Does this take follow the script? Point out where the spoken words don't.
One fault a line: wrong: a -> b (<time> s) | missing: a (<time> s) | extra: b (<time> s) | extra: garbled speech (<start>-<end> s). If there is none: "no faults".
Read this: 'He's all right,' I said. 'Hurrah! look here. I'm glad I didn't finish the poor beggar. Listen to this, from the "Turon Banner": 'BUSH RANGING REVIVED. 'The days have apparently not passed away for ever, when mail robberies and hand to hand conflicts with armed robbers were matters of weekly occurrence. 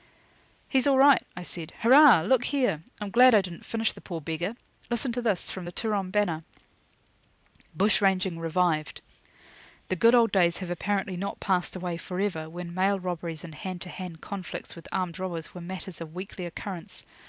extra: good old (10.0 s)